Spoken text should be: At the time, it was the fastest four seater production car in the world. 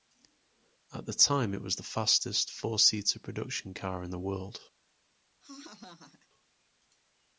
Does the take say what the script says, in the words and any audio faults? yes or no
no